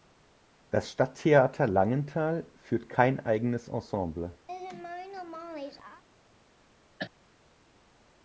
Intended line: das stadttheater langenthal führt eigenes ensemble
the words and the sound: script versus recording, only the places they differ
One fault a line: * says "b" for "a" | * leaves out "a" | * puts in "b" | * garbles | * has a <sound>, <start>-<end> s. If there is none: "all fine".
* puts in "kein"
* has a laugh, 4.5-6.0 s
* has a cough, 7.0-7.1 s